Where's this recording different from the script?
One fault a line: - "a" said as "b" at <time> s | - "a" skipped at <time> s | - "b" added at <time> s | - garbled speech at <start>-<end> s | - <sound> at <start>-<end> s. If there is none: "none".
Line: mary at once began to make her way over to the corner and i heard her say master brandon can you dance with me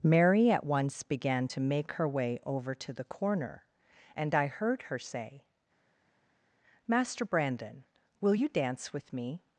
- "can" said as "will" at 8.2 s